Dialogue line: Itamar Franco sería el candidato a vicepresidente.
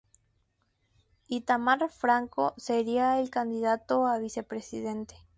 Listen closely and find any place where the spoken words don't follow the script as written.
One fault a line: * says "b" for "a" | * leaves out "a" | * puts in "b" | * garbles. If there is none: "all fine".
all fine